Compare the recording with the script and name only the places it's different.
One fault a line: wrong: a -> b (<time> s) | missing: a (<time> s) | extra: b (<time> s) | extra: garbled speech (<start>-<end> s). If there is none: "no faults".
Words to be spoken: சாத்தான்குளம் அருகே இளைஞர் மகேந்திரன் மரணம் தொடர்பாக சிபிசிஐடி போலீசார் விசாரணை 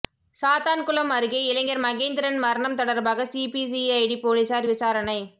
no faults